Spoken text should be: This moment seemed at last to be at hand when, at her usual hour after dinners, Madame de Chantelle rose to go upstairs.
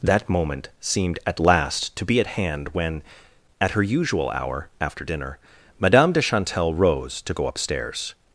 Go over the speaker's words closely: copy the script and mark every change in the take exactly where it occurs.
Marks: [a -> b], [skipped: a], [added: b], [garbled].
[This -> That] moment seemed at last to be at hand when, at her usual hour after [dinners, -> dinner] Madame de Chantelle rose to go upstairs.